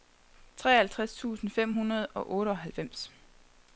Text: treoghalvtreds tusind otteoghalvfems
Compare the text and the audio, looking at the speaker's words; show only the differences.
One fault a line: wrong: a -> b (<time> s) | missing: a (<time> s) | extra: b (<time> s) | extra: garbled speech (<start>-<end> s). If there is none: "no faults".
extra: fem hundrede og (1.5 s)